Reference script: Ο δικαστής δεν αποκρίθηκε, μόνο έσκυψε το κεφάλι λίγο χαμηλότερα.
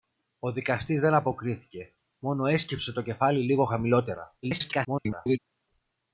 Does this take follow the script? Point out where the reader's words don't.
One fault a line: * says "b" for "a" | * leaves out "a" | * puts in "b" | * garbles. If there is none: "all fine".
* garbles